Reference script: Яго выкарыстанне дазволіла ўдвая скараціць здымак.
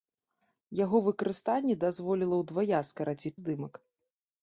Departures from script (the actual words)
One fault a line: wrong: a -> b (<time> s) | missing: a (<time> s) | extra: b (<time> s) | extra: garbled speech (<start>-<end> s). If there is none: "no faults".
no faults